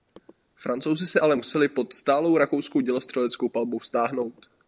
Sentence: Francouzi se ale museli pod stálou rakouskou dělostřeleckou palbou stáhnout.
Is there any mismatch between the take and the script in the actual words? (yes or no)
no